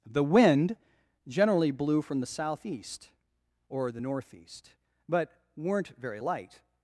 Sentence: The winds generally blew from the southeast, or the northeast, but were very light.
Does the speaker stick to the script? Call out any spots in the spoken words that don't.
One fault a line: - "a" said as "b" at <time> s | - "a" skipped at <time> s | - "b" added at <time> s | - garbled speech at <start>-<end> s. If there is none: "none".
- "winds" said as "wind" at 0.2 s
- "were" said as "weren't" at 5.6 s